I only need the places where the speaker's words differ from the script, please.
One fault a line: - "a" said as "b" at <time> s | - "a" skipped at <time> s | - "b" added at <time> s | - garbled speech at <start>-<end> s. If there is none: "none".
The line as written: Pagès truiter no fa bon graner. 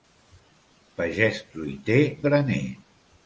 - "no fa bon" skipped at 2.0 s